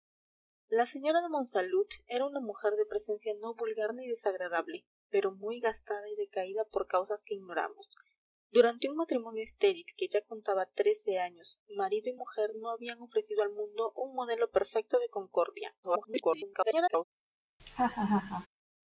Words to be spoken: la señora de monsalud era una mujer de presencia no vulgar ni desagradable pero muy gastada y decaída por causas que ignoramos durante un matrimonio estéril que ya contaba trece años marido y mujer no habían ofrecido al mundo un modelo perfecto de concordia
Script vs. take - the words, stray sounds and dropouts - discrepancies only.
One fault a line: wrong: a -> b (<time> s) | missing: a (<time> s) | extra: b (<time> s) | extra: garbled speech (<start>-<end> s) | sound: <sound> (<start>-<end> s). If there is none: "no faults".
extra: garbled speech (15.8-17.0 s)
sound: laugh (17.6-18.5 s)